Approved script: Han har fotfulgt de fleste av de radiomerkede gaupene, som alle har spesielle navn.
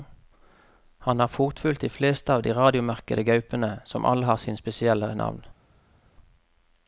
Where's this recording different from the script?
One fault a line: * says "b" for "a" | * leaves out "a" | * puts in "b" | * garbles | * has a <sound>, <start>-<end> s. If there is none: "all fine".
* puts in "sine"